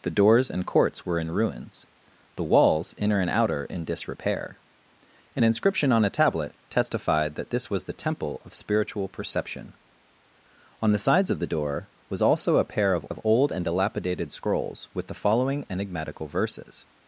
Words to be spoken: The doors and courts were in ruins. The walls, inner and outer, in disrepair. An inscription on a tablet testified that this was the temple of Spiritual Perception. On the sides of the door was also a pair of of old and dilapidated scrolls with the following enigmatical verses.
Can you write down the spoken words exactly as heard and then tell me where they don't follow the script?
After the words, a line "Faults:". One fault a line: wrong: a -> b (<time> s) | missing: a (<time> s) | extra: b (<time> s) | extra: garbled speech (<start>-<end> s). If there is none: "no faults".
The doors and courts were in ruins. The walls, inner and outer, in disrepair. An inscription on a tablet testified that this was the temple of Spiritual Perception. On the sides of the door was also a pair of of old and dilapidated scrolls with the following enigmatical verses.
Faults:
no faults